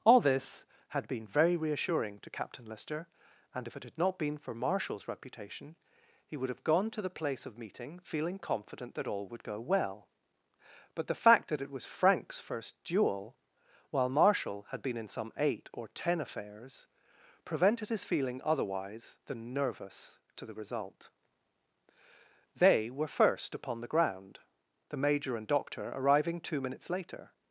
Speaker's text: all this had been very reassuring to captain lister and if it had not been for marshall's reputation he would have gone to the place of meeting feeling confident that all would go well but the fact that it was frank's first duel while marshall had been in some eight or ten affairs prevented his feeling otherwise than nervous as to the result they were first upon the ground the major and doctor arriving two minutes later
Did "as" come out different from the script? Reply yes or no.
yes